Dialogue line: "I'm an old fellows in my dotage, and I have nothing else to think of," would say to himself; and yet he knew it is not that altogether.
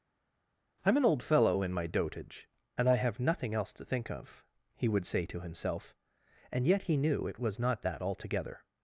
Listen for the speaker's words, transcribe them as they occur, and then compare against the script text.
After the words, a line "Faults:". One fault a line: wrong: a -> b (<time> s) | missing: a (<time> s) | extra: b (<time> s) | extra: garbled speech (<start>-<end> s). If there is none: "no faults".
"I'm an old fellow in my dotage, and I have nothing else to think of," he would say to himself; and yet he knew it was not that altogether.
Faults:
wrong: fellows -> fellow (1.2 s)
extra: he (4.8 s)
wrong: is -> was (7.4 s)